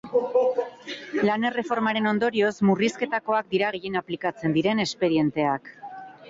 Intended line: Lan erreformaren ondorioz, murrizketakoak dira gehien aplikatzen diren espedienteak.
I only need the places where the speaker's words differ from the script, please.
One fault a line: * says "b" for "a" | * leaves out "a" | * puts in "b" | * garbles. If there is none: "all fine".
all fine